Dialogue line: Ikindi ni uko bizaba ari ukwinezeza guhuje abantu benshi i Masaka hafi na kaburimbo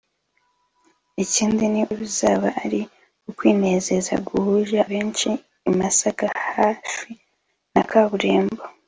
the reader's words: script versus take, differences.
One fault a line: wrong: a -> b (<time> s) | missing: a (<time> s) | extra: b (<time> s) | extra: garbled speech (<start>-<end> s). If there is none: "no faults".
missing: uko (1.8 s)
missing: abantu (4.8 s)